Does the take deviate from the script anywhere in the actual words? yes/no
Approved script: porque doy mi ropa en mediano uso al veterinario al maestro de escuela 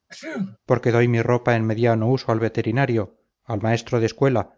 no